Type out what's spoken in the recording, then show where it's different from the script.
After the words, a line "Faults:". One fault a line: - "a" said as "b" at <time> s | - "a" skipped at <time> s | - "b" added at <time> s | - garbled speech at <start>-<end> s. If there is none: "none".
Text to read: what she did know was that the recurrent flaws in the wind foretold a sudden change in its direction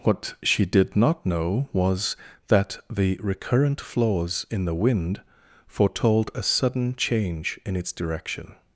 what she did not know was that the recurrent flaws in the wind foretold a sudden change in its direction
Faults:
- "not" added at 0.9 s